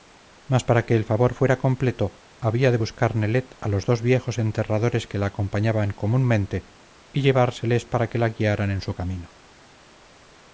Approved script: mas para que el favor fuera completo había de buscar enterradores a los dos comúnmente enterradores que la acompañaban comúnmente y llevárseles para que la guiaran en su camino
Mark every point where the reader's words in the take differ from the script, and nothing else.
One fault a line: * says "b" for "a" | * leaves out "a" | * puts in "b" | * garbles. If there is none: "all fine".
* says "nelet" for "enterradores"
* says "viejos" for "comúnmente"